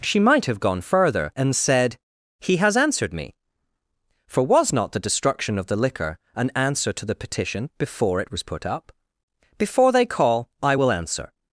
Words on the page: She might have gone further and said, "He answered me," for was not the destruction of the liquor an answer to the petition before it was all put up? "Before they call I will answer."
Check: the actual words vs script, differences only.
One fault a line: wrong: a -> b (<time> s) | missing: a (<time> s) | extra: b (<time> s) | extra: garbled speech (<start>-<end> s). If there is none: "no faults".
extra: has (2.6 s)
missing: all (8.4 s)